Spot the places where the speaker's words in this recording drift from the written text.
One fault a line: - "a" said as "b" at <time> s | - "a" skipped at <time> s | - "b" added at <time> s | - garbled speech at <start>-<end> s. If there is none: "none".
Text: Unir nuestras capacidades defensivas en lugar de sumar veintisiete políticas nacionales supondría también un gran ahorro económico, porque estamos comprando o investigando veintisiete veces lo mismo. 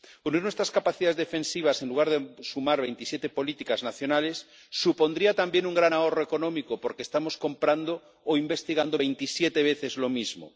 none